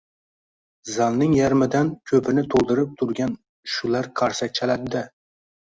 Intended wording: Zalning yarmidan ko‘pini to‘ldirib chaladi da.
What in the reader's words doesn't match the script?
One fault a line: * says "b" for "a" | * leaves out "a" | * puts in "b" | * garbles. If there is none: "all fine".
* puts in "turgan shular qarsak"